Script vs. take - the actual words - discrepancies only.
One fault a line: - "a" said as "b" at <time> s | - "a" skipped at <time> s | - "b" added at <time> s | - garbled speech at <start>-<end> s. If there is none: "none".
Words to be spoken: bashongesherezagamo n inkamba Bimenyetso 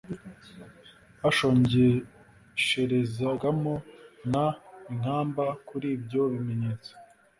- "Kuri ibyo" added at 5.7 s